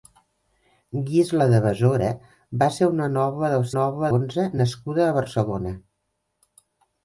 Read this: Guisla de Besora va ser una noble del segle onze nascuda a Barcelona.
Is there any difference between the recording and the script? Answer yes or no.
yes